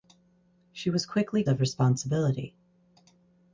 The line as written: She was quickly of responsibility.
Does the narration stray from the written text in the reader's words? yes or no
no